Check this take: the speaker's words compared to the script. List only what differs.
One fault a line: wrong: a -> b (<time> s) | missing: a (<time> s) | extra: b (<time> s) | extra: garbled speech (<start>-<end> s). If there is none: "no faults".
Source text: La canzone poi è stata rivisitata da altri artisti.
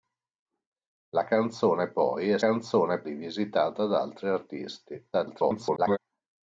wrong: stata -> canzone (2.4 s)
extra: garbled speech (5.1-6.0 s)